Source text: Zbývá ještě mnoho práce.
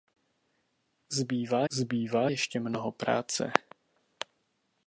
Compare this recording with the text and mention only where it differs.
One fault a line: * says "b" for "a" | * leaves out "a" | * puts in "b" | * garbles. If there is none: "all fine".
* puts in "zbývá"